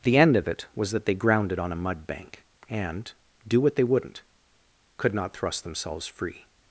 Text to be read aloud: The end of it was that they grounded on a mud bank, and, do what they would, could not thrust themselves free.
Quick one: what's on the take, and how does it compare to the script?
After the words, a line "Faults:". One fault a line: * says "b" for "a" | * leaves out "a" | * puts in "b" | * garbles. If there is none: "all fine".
The end of it was that they grounded on a mud bank, and, do what they wouldn't, could not thrust themselves free.
Faults:
* says "wouldn't" for "would"